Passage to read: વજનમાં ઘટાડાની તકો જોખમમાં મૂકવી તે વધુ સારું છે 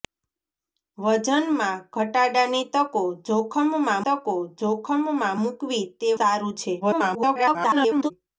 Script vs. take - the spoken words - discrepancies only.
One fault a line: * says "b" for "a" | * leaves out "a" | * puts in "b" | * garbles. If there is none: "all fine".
* puts in "તકો જોખમમાં"
* leaves out "વધુ"
* garbles